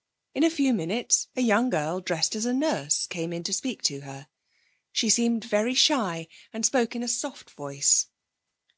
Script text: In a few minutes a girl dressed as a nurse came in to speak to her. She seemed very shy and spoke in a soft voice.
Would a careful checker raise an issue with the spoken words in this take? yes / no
yes